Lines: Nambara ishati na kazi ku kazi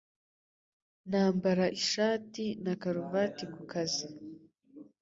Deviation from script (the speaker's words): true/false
true